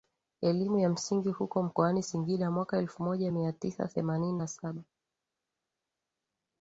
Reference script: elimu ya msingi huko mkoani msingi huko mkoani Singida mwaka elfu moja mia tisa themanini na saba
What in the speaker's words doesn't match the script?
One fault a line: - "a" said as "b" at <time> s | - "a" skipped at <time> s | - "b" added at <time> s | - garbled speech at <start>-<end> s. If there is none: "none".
- "msingi huko mkoani" skipped at 2.0 s